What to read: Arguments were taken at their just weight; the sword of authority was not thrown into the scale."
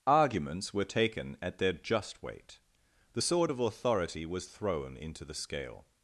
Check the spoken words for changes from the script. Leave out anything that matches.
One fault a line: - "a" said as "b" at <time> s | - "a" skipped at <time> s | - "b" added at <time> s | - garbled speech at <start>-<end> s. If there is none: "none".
- "not" skipped at 4.4 s